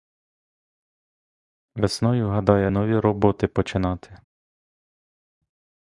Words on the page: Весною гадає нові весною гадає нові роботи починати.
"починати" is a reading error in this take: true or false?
false